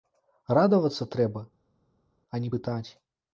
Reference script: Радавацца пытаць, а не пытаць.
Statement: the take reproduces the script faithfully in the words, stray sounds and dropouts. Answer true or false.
false